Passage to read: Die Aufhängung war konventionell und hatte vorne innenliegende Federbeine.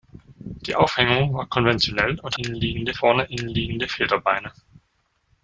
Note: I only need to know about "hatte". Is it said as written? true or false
false